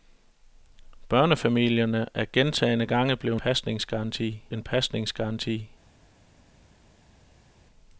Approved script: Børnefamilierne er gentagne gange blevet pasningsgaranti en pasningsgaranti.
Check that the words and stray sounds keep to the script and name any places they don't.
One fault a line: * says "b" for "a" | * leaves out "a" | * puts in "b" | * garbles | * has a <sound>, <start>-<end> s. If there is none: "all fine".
all fine